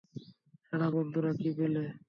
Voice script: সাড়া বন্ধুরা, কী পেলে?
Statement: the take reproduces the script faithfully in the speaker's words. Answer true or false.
true